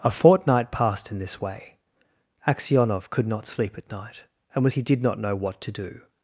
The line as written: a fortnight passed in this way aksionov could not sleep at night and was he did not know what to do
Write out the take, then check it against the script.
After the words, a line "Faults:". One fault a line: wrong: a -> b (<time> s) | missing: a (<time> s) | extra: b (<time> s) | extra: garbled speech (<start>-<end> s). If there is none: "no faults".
a fortnight passed in this way aksionov could not sleep at night and was he did not know what to do
Faults:
no faults